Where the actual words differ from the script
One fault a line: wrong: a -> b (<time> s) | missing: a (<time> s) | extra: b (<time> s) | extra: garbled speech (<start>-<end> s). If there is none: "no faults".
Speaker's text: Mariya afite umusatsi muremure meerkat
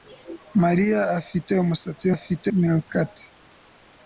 wrong: muremure -> afite (2.1 s)